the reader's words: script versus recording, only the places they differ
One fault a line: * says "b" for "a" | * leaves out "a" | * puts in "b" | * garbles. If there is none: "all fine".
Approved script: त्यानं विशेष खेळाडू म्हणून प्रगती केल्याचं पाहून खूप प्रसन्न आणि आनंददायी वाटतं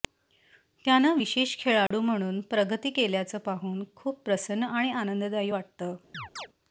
all fine